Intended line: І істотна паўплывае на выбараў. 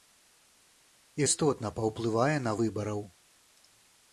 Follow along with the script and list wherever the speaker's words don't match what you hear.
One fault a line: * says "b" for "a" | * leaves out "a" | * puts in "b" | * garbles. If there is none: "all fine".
all fine